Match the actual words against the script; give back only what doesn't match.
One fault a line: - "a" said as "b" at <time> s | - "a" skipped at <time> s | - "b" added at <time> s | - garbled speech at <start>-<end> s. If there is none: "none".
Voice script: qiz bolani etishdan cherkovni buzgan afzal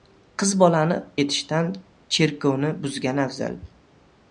none